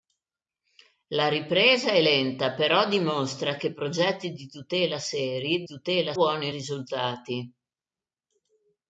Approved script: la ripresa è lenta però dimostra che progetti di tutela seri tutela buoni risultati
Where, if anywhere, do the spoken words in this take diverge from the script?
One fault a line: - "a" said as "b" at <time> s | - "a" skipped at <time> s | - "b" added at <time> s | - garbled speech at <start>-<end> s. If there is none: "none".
none